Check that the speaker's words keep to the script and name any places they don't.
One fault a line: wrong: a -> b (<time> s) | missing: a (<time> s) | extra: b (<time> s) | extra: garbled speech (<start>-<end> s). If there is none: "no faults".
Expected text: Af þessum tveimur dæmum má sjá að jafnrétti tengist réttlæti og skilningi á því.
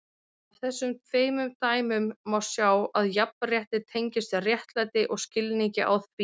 no faults